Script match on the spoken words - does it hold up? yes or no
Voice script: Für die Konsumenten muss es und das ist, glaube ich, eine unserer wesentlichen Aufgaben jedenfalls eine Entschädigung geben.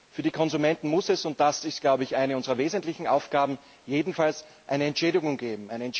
yes